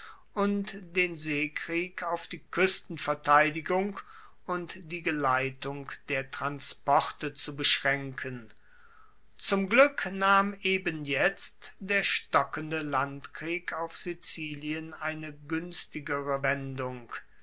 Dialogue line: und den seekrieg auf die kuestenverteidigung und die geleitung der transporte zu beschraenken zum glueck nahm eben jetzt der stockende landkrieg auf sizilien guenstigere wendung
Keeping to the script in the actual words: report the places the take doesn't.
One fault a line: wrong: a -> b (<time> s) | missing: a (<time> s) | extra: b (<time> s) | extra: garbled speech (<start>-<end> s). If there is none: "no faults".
extra: eine (14.9 s)